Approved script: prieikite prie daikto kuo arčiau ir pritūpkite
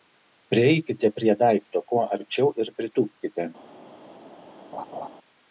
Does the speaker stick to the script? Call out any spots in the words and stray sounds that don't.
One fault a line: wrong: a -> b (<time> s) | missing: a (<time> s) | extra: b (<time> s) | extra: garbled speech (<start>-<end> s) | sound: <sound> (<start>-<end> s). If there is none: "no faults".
sound: laugh (4.7-5.1 s)